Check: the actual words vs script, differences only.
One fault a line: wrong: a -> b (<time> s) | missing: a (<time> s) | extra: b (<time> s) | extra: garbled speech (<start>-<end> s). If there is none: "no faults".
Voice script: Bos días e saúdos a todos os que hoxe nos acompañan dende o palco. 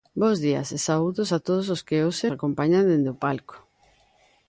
missing: nos (2.3 s)